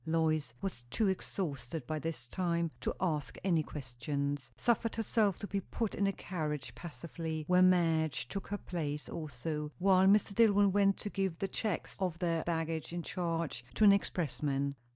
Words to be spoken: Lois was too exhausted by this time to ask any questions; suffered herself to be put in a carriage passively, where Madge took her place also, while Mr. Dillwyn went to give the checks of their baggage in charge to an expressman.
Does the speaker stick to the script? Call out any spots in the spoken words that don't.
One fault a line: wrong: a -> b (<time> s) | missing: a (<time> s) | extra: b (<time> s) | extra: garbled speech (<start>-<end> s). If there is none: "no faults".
no faults